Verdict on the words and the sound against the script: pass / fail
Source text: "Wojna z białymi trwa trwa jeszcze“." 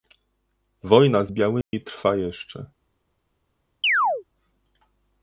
fail